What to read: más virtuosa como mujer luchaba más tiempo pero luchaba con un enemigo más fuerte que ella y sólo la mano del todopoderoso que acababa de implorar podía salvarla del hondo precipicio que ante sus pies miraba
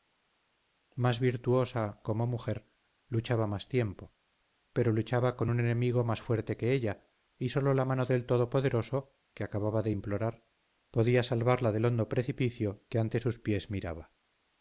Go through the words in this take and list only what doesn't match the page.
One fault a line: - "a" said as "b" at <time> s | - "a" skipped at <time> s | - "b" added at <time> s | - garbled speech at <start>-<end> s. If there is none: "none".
none